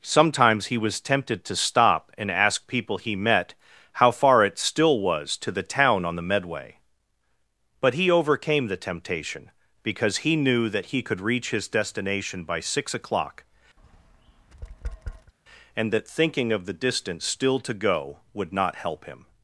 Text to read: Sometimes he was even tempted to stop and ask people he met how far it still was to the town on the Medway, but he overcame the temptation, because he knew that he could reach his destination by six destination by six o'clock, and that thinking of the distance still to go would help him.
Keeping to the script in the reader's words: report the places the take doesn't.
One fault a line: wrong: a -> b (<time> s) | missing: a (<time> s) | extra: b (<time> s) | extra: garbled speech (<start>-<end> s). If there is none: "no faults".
missing: even (1.0 s)
missing: destination by six (12.9 s)
extra: not (18.5 s)